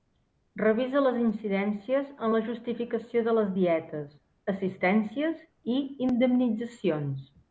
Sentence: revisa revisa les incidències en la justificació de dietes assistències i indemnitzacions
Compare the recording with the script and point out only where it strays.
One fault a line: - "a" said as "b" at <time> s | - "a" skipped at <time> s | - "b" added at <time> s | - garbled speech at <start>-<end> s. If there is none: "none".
- "revisa" skipped at 1.0 s
- "les" added at 3.4 s